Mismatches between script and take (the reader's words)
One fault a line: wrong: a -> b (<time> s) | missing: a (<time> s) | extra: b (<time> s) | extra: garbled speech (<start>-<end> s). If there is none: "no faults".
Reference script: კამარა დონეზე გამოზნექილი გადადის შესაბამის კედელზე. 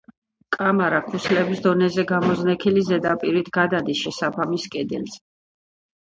extra: ქუსლების (1.1 s)
extra: ზედაპირით (2.9 s)